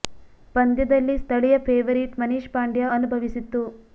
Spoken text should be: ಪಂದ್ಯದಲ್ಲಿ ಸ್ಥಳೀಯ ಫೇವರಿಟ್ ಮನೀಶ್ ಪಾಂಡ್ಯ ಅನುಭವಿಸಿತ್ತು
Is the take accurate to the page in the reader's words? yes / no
yes